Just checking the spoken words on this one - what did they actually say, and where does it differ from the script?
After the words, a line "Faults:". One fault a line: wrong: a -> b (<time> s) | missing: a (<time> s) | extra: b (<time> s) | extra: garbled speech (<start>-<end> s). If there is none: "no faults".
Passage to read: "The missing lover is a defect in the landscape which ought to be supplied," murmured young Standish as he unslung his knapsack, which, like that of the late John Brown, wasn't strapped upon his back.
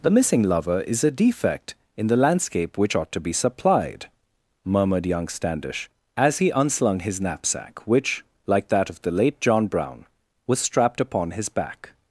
"The missing lover is a defect in the landscape which ought to be supplied," murmured young Standish as he unslung his knapsack, which, like that of the late John Brown, was strapped upon his back.
Faults:
wrong: wasn't -> was (10.5 s)